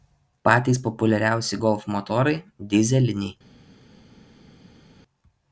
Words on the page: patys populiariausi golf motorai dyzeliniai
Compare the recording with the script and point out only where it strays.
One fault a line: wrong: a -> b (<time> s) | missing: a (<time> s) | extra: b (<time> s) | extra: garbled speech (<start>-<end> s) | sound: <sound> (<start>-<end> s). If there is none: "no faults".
no faults